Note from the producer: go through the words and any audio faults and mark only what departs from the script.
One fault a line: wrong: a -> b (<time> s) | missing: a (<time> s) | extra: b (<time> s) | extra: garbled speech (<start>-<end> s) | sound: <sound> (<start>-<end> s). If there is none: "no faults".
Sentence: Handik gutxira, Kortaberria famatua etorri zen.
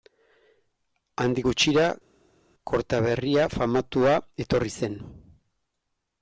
no faults